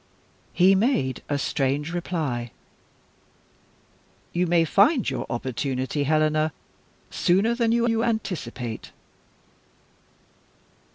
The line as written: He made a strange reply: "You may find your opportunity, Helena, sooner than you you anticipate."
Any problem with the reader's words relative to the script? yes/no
no